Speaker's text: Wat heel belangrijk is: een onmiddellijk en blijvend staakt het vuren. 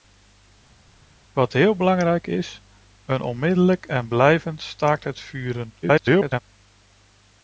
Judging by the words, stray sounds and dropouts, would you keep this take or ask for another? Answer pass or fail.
fail